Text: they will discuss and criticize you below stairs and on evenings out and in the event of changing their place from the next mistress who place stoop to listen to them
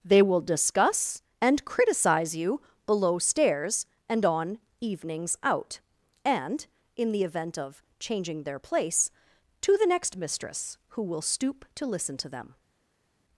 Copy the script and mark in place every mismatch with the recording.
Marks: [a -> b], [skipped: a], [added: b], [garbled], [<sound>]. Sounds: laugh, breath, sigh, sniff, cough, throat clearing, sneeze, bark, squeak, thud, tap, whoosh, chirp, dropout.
they will discuss and criticize you below stairs and on evenings out and in the event of changing their place [from -> to] the next mistress who [place -> will] stoop to listen to them